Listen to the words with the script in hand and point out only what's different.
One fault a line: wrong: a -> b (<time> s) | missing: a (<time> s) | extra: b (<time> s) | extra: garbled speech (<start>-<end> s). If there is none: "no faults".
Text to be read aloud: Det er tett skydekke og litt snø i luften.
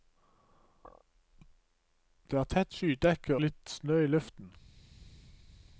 missing: og (3.4 s)